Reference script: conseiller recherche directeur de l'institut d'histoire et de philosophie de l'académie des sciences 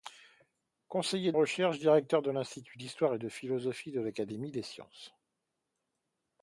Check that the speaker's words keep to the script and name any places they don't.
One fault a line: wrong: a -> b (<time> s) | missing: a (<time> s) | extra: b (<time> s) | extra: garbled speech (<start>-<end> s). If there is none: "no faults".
no faults